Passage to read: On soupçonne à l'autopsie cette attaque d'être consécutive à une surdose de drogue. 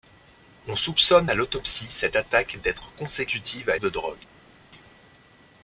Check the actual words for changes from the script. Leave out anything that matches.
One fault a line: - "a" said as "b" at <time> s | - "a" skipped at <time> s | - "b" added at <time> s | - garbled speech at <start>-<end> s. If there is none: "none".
- "une surdose" skipped at 3.8 s